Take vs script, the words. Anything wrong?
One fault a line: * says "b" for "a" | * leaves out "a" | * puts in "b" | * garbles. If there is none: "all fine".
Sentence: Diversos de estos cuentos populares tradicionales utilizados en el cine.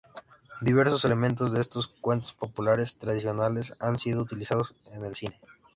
* puts in "elementos"
* puts in "han sido"